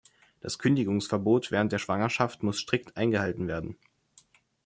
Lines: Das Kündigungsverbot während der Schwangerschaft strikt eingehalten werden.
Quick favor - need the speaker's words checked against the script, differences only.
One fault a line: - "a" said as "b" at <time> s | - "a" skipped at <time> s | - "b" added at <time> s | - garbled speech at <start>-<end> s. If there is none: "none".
- "muss" added at 2.4 s